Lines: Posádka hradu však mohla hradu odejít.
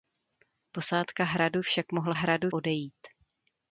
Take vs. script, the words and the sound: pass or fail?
pass